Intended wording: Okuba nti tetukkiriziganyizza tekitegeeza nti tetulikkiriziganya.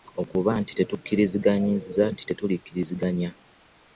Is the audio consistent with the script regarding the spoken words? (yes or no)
no